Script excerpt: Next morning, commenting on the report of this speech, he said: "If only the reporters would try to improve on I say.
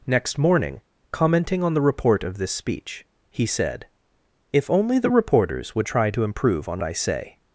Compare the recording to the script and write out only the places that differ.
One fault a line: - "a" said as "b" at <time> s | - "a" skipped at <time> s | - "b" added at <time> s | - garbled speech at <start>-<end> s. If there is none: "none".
none